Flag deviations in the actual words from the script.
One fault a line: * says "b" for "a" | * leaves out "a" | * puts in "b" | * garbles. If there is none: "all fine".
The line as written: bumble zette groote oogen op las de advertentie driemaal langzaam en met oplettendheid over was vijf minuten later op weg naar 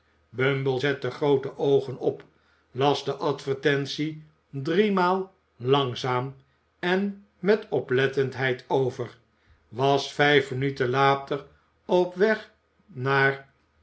all fine